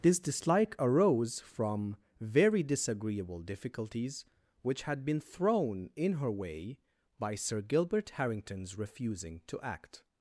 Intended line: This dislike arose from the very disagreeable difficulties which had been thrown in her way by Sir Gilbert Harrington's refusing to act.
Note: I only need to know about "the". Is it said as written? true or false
false